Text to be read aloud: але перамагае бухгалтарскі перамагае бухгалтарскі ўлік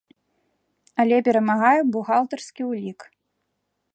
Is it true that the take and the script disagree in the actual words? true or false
true